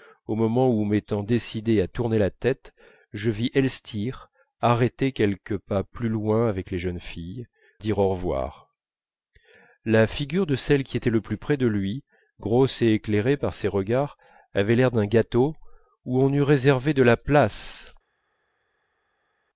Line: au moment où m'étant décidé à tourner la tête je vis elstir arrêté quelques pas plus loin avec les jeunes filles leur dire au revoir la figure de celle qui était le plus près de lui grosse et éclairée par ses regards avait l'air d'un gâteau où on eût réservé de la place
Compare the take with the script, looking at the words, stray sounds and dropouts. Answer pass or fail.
fail